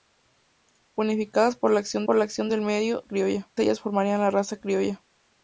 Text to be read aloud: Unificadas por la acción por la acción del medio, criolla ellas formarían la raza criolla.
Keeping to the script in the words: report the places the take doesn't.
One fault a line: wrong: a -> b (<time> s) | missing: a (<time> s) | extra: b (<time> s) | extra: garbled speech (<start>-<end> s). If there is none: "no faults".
no faults